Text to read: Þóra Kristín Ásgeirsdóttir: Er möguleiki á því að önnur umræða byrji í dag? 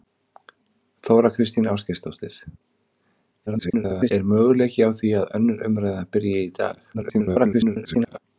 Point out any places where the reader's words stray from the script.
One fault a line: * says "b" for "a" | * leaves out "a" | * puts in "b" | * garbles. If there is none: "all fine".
* garbles
* garbles